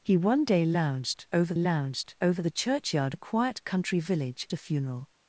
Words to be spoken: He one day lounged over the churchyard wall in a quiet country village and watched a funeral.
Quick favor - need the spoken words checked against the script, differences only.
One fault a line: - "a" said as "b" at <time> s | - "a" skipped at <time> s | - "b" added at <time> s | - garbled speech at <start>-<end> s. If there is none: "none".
- "lounged over" added at 1.6 s
- "wall in" skipped at 3.2 s
- "and watched" skipped at 4.5 s